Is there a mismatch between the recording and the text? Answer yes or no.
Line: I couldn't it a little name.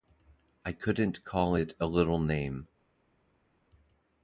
yes